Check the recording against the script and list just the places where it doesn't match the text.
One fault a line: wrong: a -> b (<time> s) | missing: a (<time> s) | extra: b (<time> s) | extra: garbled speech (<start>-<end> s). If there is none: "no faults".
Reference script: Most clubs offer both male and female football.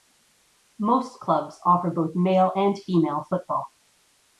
no faults